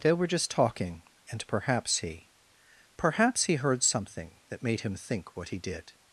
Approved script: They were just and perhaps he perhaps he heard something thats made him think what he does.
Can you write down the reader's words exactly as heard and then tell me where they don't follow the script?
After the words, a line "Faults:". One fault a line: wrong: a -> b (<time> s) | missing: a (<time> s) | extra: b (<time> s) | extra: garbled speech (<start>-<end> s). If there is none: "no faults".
They were just talking, and perhaps he perhaps he heard something that made him think what he did.
Faults:
extra: talking (0.5 s)
wrong: thats -> that (4.5 s)
wrong: does -> did (5.6 s)